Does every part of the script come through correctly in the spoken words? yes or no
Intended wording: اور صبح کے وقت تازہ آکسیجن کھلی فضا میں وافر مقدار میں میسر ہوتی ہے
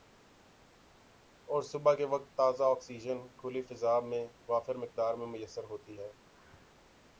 yes